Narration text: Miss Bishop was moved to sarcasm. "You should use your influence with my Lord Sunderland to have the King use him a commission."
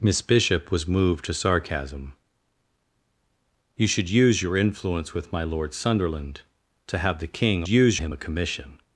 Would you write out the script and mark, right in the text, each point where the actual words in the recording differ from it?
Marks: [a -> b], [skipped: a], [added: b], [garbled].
Miss Bishop was moved to sarcasm. "You should use your influence with my Lord Sunderland to have the King use him a commission."